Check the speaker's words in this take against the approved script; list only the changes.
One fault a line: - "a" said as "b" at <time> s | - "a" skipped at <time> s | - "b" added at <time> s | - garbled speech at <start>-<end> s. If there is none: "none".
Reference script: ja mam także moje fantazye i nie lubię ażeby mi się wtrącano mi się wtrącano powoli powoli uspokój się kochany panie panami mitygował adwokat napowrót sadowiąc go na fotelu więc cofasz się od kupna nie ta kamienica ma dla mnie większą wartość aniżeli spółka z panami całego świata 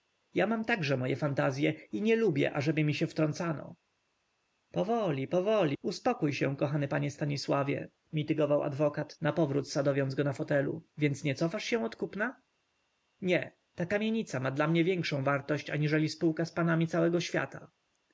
- "mi się wtrącano" skipped at 3.8 s
- "panami" said as "stanisławie" at 7.1 s
- "nie" added at 11.2 s